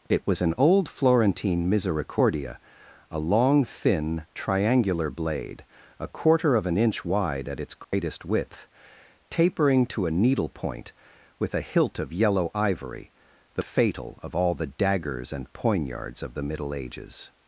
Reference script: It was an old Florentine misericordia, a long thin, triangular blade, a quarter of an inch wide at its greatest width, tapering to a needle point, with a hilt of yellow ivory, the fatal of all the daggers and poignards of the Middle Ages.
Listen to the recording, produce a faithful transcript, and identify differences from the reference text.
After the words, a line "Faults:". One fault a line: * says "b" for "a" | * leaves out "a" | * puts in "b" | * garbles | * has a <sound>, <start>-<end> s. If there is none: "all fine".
It was an old Florentine misericordia, a long thin, triangular blade, a quarter of an inch wide at its greatest width, tapering to a needle point, with a hilt of yellow ivory, the fatal of all the daggers and poignards of the Middle Ages.
Faults:
* has a dropout, 7.8-7.9 s